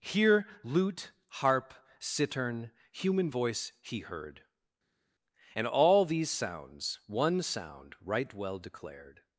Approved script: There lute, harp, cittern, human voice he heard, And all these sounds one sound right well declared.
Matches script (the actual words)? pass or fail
fail